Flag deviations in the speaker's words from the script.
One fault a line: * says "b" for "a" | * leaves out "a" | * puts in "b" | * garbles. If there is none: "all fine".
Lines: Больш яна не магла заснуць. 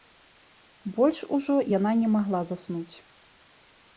* puts in "ужо"